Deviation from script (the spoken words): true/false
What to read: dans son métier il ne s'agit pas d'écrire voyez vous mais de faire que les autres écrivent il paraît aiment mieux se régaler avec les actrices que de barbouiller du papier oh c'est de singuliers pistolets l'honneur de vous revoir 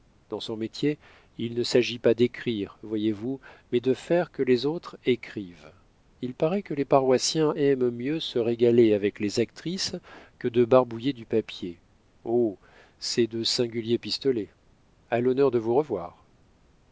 true